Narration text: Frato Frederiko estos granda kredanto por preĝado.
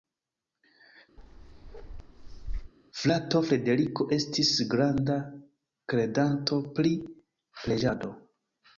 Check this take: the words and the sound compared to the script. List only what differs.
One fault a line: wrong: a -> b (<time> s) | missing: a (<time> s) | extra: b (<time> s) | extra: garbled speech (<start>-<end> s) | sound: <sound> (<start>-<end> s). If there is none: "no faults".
sound: bark (1.2-2.7 s)
wrong: estos -> estis (4.2 s)
wrong: por -> pri (6.8 s)